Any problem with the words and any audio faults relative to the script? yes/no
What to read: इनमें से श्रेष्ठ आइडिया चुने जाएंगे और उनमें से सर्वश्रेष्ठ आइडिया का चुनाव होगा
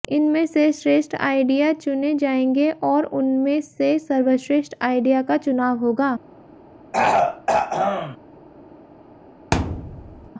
yes